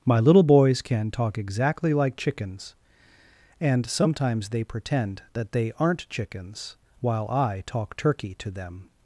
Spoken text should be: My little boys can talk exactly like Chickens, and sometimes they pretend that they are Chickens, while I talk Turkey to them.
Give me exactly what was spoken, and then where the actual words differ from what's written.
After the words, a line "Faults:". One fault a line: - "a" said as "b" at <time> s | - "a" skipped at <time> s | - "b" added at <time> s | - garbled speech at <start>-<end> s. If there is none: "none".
My little boys can talk exactly like Chickens, and sometimes they pretend that they aren't Chickens, while I talk Turkey to them.
Faults:
- "are" said as "aren't" at 5.8 s